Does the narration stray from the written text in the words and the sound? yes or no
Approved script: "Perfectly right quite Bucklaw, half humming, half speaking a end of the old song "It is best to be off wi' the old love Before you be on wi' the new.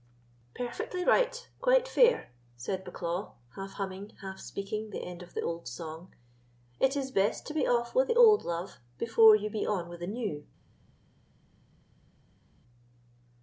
yes